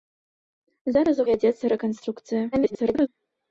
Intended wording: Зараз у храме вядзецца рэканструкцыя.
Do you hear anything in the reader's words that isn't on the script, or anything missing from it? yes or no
yes